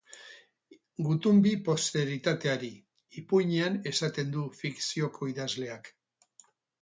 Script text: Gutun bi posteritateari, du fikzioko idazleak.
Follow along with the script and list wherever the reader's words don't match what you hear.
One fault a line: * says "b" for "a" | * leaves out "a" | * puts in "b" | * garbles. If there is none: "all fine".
* puts in "ipuinean esaten"